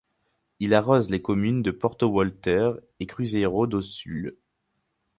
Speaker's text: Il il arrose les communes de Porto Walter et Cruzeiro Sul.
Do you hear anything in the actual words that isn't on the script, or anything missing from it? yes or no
yes